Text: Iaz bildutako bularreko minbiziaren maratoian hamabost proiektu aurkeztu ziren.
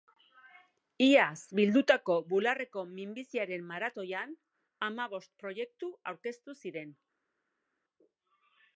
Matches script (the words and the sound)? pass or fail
pass